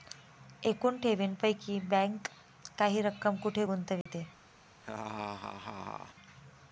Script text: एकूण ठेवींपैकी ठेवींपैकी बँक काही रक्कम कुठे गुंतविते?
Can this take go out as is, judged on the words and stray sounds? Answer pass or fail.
fail